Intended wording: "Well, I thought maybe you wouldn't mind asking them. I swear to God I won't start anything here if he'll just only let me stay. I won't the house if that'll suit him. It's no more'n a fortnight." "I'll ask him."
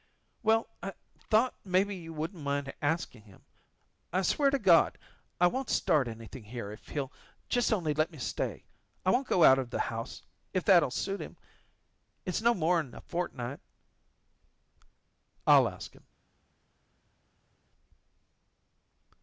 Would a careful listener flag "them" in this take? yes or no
yes